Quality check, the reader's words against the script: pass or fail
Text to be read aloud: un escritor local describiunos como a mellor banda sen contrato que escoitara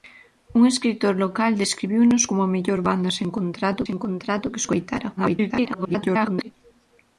fail